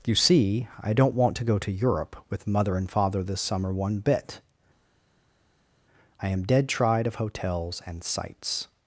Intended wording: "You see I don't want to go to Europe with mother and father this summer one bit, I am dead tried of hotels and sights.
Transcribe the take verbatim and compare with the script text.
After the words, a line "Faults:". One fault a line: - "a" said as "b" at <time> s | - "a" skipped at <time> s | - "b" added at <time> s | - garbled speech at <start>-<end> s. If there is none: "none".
"You see I don't want to go to Europe with mother and father this summer one bit, I am dead tried of hotels and sights.
Faults:
none